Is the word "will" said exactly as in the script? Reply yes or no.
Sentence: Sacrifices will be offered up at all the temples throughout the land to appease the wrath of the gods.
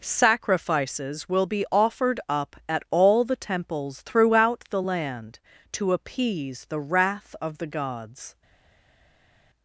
yes